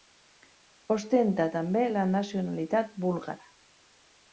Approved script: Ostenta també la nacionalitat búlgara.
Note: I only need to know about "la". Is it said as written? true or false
true